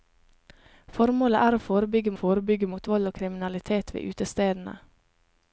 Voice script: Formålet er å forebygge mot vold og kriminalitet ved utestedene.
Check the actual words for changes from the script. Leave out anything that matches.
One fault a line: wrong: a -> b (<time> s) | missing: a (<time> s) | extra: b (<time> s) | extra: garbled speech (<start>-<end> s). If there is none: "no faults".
extra: forebygge (2.2 s)